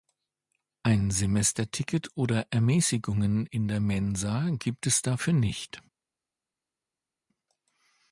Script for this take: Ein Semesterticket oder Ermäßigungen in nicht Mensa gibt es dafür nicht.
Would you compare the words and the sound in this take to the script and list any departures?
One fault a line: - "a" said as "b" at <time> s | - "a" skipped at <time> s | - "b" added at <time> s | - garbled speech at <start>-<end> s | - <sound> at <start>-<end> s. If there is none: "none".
- "nicht" said as "der" at 3.7 s